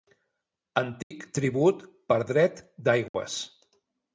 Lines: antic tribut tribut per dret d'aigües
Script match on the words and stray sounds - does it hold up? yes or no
no